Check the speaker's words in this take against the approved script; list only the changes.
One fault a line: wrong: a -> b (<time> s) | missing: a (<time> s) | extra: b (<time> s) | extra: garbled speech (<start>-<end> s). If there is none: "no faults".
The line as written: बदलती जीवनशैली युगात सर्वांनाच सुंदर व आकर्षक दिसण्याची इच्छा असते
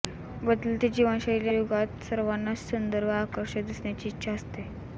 no faults